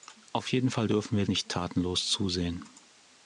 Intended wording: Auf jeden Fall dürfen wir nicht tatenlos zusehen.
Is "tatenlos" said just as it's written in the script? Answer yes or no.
yes